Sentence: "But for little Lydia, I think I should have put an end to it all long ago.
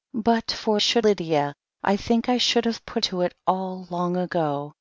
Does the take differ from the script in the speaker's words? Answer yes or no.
yes